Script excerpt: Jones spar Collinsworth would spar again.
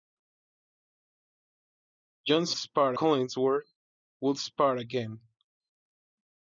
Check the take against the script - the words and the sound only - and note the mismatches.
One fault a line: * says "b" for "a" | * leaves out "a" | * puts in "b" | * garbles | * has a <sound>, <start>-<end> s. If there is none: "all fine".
all fine